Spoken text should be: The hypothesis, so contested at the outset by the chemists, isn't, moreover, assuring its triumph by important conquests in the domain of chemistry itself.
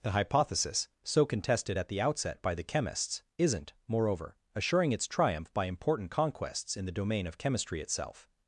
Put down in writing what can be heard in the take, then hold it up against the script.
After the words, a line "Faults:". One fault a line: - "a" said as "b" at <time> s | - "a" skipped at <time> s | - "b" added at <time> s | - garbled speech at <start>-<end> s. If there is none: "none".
The hypothesis, so contested at the outset by the chemists, isn't, moreover, assuring its triumph by important conquests in the domain of chemistry itself.
Faults:
none